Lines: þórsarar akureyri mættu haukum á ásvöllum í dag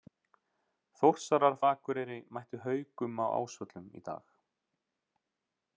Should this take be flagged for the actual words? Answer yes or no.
no